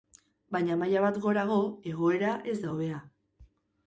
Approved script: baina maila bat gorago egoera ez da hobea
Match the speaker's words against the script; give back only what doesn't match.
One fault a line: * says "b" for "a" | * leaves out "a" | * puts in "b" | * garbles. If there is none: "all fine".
all fine